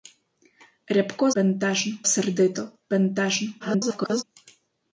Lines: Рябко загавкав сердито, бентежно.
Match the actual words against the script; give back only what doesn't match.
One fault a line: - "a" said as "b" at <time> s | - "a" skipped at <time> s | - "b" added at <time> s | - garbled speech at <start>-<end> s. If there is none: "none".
- "загавкав" said as "бентежно" at 1.4 s
- garbled speech at 3.6-4.2 s